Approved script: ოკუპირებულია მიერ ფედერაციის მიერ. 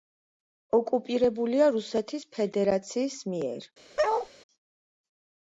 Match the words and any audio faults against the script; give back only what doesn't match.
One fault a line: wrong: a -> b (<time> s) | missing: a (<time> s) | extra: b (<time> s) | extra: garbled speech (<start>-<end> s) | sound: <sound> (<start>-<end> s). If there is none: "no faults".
wrong: მიერ -> რუსეთის (1.7 s)
sound: bark (4.0-4.3 s)